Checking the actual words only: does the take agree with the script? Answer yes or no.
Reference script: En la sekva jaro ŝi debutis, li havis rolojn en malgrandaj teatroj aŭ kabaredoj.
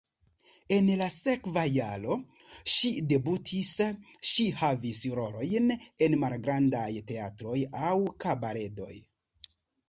no